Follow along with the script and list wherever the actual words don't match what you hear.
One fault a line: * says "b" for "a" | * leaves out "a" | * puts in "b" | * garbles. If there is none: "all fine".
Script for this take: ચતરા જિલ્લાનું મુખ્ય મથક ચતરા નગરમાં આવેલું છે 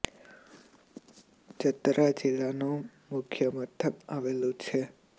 * leaves out "ચતરા નગરમાં"